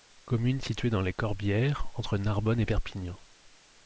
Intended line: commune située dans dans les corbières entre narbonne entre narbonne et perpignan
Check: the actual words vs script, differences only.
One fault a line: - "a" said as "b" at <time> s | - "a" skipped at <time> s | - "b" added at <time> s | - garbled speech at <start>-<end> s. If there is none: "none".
- "dans" skipped at 1.0 s
- "entre narbonne" skipped at 2.6 s